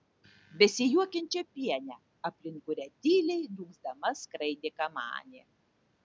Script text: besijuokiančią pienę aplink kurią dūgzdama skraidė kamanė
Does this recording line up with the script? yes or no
no